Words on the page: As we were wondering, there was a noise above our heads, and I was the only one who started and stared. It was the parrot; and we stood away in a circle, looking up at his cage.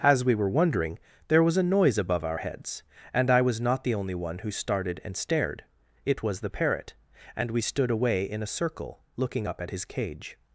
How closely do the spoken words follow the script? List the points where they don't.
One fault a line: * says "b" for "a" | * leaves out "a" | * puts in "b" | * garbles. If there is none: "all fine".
* puts in "not"